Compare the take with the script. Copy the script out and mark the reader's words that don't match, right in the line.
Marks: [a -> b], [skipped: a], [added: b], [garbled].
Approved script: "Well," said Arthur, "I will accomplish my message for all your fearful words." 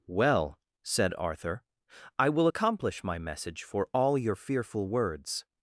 "Well," said Arthur, "I will accomplish my message for all your fearful words."